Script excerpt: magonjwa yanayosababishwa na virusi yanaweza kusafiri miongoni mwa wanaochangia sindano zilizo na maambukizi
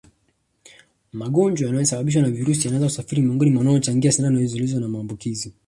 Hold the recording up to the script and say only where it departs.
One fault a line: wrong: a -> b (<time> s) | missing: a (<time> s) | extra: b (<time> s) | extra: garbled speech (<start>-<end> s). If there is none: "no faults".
no faults